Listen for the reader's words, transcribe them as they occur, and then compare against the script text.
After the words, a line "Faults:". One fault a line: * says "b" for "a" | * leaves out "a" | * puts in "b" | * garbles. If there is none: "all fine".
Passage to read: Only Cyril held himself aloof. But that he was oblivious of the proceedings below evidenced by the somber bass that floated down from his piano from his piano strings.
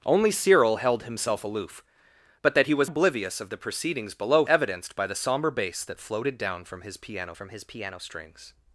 Only Cyril held himself aloof. But that he was oblivious of the proceedings below evidenced by the somber bass that floated down from his piano from his piano strings.
Faults:
all fine